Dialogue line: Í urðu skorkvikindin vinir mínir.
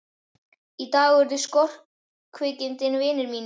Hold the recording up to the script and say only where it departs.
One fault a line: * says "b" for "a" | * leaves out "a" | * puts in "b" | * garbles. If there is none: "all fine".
* puts in "dag"